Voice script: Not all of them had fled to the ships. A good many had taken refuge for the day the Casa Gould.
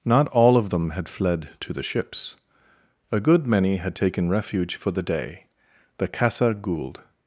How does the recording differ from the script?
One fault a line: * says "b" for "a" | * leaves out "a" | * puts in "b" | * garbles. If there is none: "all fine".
all fine